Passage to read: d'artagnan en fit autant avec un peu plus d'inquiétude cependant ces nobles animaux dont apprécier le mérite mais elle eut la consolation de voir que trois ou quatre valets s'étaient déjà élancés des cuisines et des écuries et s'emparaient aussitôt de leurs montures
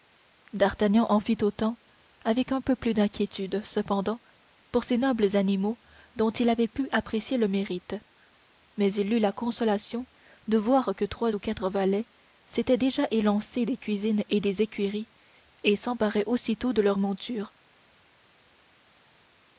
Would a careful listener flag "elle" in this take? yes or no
yes